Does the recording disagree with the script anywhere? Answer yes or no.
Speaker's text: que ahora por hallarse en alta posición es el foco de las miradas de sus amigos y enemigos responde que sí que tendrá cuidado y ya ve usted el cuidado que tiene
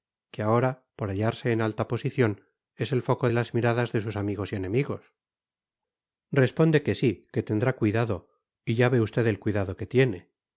no